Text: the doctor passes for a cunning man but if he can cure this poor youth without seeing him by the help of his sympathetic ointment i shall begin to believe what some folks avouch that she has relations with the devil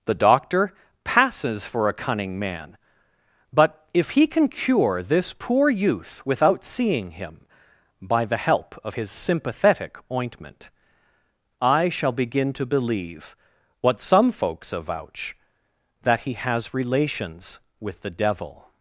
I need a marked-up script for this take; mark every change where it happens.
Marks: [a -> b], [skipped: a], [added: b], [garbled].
the doctor passes for a cunning man but if he can cure this poor youth without seeing him by the help of his sympathetic ointment i shall begin to believe what some folks avouch that [she -> he] has relations with the devil